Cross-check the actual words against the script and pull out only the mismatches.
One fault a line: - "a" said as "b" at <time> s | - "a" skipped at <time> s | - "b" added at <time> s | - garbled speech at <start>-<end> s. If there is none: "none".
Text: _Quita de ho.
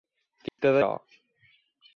none